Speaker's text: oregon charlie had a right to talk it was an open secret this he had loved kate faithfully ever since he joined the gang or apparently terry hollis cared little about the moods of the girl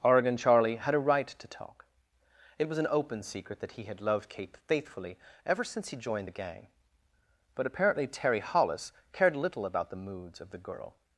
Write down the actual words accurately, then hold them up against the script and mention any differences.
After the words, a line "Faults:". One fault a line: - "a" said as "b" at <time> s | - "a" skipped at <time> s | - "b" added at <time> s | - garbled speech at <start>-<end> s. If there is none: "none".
oregon charlie had a right to talk it was an open secret that he had loved kate faithfully ever since he joined the gang but apparently terry hollis cared little about the moods of the girl
Faults:
- "this" said as "that" at 3.6 s
- "or" said as "but" at 7.5 s